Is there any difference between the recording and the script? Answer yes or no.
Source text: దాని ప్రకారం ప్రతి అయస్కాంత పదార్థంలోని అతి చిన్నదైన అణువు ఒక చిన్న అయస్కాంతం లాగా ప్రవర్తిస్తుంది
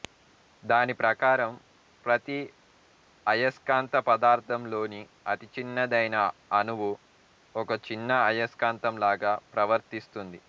no